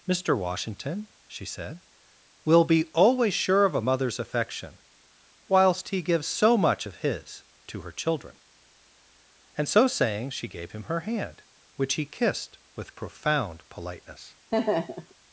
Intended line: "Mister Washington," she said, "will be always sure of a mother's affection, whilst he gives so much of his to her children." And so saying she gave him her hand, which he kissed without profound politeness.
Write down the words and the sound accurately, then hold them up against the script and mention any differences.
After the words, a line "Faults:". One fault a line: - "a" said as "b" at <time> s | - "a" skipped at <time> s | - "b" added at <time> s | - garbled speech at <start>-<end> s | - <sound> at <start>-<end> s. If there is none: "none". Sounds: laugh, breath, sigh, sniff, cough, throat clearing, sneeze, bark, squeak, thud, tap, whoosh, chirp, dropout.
"Mister Washington," she said, "will be always sure of a mother's affection, whilst he gives so much of his to her children." And so saying she gave him her hand, which he kissed with profound politeness.
Faults:
- "without" said as "with" at 12.8 s
- laugh at 14.5-15.1 s